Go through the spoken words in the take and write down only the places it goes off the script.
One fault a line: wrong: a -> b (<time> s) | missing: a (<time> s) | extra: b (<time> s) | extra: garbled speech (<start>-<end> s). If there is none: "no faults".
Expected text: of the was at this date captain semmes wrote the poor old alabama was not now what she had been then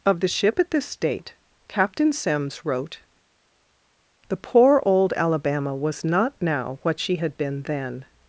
wrong: was -> ship (0.3 s)